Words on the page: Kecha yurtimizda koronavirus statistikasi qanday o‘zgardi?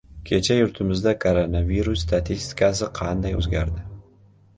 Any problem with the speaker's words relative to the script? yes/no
no